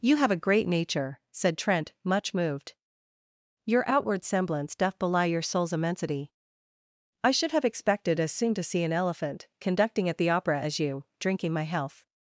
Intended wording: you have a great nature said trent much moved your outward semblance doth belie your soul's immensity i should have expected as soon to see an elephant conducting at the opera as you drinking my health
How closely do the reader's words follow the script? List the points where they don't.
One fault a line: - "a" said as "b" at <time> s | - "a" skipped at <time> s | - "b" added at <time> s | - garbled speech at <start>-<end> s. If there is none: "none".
none